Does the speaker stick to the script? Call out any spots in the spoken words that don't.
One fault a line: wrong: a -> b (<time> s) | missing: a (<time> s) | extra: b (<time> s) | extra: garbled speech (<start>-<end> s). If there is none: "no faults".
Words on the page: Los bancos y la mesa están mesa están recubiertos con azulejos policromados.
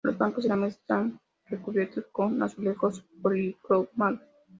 missing: mesa están (1.2 s)